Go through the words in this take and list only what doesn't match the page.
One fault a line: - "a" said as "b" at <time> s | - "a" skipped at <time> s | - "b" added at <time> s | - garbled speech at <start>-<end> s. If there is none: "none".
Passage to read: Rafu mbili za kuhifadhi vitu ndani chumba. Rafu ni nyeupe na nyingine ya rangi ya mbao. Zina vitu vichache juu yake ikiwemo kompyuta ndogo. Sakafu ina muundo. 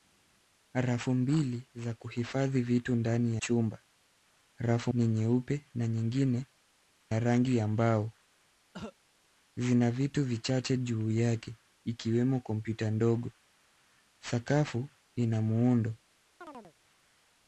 none